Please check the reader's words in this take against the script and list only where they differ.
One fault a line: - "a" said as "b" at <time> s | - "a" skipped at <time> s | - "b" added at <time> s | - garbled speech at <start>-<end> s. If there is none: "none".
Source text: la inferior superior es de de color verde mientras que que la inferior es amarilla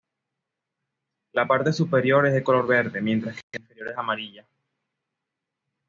- "inferior" said as "parte" at 1.4 s
- "de" skipped at 2.4 s
- "que" skipped at 3.6 s